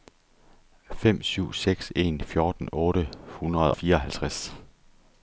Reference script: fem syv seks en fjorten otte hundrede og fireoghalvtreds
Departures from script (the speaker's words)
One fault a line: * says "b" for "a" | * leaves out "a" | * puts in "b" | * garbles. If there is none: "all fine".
* leaves out "og"